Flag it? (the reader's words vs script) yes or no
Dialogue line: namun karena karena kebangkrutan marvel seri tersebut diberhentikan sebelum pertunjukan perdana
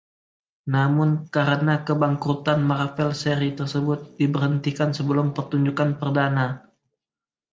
yes